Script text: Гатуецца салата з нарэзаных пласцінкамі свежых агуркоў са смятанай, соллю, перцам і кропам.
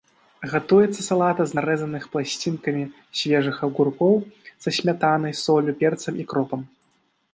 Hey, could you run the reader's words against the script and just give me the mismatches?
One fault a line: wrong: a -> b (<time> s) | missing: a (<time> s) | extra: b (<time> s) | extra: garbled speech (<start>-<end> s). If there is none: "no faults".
no faults